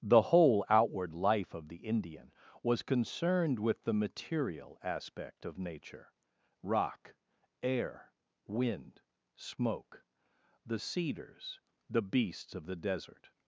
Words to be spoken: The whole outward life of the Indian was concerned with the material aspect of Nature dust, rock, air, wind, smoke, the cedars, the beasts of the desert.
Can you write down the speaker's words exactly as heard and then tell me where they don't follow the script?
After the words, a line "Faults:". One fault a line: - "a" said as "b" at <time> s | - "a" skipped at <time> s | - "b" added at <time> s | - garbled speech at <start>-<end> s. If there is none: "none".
The whole outward life of the Indian was concerned with the material aspect of Nature rock, air, wind, smoke, the cedars, the beasts of the desert.
Faults:
- "dust" skipped at 6.1 s